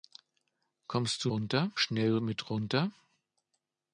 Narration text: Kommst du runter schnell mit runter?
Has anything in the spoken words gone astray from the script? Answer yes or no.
no